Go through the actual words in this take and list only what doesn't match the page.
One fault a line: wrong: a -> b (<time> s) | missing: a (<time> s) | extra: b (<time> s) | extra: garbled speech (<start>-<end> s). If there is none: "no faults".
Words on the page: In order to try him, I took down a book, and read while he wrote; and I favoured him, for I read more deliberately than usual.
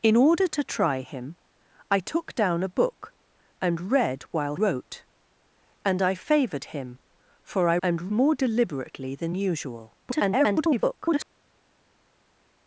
missing: he (4.5 s)
wrong: read -> and (7.8 s)
extra: garbled speech (10.0-11.3 s)